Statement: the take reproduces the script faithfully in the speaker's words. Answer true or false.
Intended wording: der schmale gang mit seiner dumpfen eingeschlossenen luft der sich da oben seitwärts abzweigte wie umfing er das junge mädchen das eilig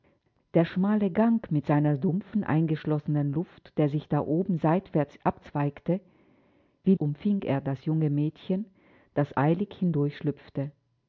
true